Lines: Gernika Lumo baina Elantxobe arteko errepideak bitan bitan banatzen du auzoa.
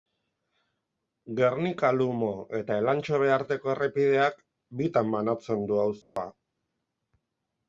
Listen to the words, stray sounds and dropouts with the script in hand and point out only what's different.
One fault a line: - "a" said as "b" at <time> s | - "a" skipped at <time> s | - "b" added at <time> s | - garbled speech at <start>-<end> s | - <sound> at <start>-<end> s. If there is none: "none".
- "baina" said as "eta" at 2.6 s
- "bitan" skipped at 5.1 s
- dropout at 6.0-6.2 s